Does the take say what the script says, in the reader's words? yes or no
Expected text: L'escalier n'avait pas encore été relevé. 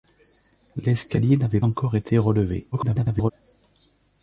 no